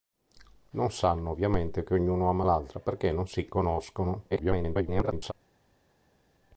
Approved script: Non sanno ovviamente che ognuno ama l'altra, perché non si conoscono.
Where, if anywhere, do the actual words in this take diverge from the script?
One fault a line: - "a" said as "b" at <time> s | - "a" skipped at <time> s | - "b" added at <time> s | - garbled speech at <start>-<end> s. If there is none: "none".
- garbled speech at 4.3-5.3 s